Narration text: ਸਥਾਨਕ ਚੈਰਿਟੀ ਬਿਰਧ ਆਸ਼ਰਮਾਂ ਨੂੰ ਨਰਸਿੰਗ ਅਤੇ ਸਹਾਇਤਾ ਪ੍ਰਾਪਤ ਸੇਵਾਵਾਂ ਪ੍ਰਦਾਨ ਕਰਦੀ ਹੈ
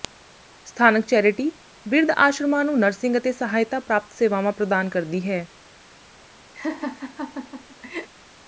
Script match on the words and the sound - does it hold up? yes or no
no